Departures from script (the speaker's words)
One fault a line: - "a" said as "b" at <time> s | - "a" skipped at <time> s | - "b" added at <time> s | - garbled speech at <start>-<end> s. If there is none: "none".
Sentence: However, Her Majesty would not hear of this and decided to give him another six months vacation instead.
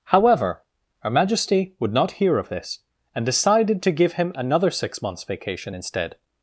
none